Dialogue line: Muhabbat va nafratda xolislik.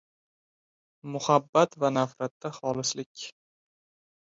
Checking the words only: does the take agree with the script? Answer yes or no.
yes